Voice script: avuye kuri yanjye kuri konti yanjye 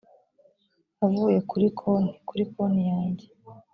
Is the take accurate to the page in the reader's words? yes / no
no